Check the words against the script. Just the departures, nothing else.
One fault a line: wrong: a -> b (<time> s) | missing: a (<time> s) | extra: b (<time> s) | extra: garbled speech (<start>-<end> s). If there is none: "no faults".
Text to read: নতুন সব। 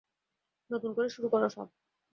extra: করে শুরু করো (0.9 s)